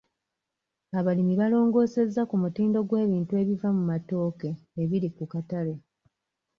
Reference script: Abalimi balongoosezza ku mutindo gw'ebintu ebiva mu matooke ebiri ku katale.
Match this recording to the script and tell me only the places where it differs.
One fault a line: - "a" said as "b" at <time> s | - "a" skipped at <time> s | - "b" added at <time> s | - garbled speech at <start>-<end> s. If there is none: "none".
none